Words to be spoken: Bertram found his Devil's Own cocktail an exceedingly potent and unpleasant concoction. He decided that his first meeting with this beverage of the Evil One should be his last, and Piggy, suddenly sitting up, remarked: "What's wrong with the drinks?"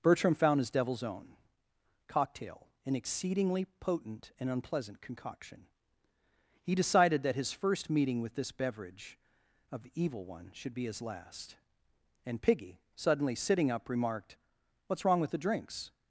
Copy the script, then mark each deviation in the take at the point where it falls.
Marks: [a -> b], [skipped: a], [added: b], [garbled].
Bertram found his Devil's Own cocktail an exceedingly potent and unpleasant concoction. He decided that his first meeting with this beverage of the Evil One should be his last, and Piggy, suddenly sitting up, remarked: "What's wrong with the drinks?"